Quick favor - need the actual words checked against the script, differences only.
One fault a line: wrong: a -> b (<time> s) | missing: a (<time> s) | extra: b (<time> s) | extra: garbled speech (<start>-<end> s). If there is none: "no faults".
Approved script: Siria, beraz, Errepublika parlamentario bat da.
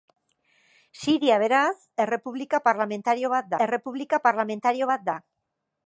extra: Errepublika parlamentario bat (3.7 s)